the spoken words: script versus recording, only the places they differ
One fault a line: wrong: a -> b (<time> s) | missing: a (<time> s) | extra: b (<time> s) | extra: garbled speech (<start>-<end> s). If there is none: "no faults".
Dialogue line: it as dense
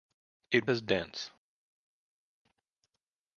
no faults